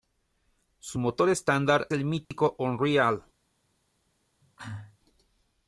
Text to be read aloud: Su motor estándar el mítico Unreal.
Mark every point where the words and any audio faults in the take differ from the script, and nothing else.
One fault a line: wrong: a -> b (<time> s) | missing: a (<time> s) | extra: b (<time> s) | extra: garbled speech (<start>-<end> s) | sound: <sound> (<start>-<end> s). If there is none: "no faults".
sound: dropout (2.2-2.3 s)
sound: cough (4.4-5.0 s)